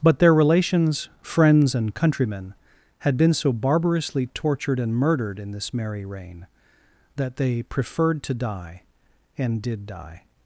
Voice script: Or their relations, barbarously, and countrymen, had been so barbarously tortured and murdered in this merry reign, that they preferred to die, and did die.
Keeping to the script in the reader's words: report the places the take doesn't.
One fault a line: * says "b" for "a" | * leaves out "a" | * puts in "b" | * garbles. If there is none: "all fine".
* says "But" for "Or"
* says "friends" for "barbarously"